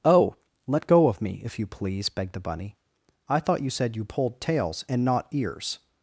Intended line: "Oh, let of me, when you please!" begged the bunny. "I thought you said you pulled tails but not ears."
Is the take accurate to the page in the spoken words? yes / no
no